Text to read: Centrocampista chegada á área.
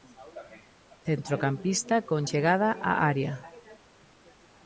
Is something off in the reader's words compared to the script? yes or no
yes